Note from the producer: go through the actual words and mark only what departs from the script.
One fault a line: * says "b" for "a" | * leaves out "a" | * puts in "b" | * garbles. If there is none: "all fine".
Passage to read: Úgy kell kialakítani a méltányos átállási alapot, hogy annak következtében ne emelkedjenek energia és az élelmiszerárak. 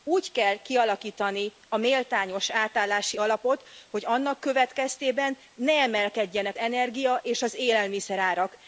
all fine